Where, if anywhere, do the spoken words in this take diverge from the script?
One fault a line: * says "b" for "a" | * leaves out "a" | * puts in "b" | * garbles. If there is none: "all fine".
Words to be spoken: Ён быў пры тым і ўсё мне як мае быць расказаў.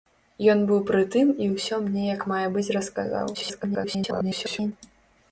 * garbles